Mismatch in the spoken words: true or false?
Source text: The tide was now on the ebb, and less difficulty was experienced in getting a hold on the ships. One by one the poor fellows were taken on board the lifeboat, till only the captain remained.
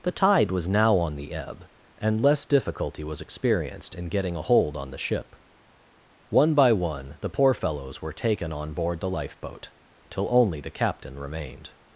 true